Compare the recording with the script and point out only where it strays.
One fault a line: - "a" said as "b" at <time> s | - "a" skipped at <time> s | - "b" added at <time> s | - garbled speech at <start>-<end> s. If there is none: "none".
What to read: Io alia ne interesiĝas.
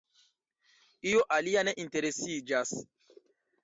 none